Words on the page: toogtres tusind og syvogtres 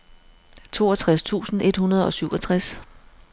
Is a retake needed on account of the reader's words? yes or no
yes